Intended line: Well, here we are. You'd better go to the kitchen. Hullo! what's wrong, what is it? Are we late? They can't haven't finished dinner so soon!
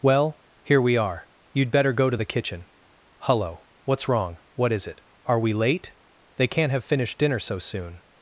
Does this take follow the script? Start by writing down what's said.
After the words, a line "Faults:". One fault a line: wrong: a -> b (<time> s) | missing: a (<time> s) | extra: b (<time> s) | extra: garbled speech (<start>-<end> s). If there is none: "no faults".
Well, here we are. You'd better go to the kitchen. Hullo! what's wrong, what is it? Are we late? They can't have finished dinner so soon!
Faults:
wrong: haven't -> have (6.7 s)